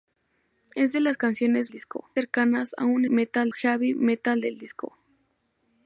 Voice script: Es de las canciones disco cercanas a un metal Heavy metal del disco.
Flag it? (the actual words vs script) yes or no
no